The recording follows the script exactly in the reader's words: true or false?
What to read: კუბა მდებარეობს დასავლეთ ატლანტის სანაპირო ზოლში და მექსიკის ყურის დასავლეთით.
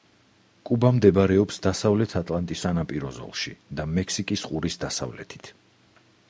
true